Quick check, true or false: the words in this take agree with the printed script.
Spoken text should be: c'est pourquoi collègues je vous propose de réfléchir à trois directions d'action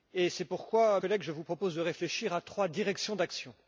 true